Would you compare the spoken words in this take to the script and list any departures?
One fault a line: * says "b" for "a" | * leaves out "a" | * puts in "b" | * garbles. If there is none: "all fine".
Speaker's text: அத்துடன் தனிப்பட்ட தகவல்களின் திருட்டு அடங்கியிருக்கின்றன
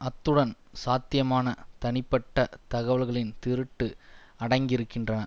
* puts in "சாத்தியமான"